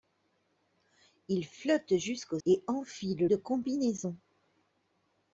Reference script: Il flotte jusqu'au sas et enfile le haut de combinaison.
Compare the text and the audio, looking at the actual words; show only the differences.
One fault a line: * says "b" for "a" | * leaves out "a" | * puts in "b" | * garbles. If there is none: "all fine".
* leaves out "sas"
* leaves out "le haut"